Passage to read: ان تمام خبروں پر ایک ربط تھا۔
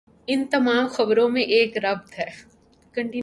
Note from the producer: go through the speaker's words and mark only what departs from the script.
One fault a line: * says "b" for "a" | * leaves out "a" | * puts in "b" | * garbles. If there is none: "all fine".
* says "میں" for "پر"
* says "ہے" for "تھا"